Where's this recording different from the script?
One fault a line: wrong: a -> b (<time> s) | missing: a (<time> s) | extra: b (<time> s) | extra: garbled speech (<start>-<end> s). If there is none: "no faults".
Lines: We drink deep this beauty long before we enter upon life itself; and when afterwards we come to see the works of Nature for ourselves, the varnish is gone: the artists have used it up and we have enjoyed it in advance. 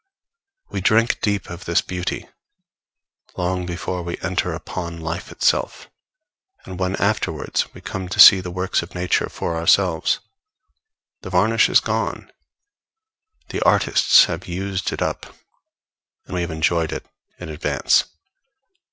extra: of (1.5 s)